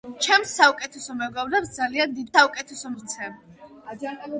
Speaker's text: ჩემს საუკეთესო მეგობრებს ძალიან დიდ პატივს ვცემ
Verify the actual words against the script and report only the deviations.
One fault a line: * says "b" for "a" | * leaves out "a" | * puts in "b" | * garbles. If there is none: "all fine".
* says "საუკეთესო" for "პატივს"